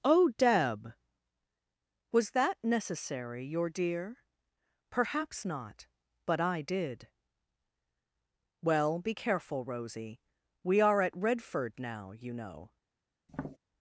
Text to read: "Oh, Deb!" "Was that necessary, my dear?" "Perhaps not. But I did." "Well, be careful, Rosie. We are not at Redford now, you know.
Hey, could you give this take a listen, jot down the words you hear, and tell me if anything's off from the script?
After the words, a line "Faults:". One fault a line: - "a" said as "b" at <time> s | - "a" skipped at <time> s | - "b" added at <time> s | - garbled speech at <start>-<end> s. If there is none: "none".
"Oh, Deb!" "Was that necessary, your dear?" "Perhaps not. But I did." "Well, be careful, Rosie. We are at Redford now, you know.
Faults:
- "my" said as "your" at 3.5 s
- "not" skipped at 11.0 s